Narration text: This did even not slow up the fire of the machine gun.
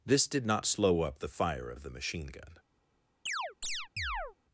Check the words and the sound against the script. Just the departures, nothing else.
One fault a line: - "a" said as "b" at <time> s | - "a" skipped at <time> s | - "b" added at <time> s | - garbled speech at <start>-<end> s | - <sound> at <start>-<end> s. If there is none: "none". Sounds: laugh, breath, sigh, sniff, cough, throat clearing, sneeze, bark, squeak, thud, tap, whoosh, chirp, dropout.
- "even" skipped at 0.5 s
- chirp at 3.3-4.4 s